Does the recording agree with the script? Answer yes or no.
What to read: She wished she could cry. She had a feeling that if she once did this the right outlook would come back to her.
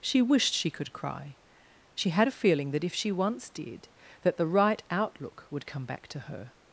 no